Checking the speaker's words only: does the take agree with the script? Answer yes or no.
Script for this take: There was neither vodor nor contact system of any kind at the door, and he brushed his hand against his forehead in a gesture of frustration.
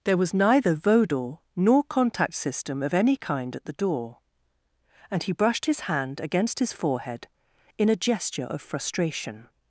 yes